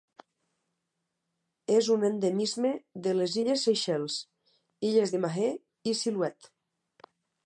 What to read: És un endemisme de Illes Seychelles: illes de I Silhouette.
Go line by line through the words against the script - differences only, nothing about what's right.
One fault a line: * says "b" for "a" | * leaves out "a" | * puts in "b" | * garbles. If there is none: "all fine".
* puts in "les"
* puts in "Mahé"